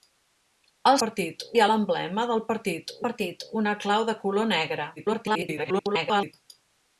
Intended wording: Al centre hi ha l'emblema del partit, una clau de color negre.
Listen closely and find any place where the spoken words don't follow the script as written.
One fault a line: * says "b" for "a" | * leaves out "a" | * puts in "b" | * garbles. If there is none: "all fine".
* says "partit" for "centre"
* puts in "partit"
* garbles